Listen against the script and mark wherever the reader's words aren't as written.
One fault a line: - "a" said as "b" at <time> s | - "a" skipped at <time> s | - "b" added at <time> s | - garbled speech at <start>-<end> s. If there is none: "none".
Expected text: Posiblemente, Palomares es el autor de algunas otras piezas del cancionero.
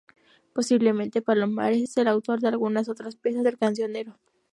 none